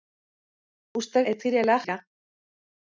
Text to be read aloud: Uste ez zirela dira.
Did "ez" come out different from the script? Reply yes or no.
no